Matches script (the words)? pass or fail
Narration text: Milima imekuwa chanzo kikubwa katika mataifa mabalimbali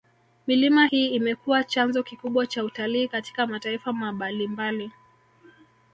fail